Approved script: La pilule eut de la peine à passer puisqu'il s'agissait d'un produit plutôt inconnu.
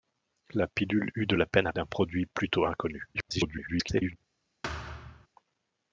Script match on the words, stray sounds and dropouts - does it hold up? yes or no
no